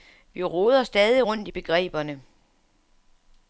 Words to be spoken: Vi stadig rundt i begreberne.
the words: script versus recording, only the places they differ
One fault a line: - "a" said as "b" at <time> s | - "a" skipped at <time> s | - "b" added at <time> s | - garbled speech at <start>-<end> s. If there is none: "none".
- "roder" added at 0.4 s